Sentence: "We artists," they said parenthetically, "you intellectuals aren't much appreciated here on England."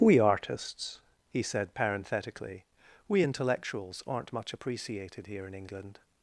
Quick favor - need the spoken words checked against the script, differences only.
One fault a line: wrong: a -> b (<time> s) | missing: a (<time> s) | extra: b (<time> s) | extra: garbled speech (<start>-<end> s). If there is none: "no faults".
wrong: they -> he (1.3 s)
wrong: you -> we (3.1 s)
wrong: on -> in (5.4 s)